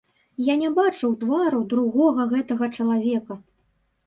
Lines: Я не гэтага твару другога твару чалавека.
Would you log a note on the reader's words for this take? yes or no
yes